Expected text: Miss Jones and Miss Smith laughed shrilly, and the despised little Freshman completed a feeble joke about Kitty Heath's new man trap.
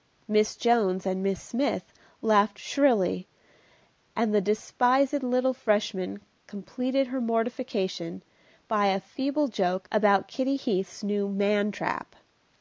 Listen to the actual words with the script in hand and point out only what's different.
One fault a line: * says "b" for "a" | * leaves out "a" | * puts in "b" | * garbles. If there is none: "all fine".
* puts in "her mortification by"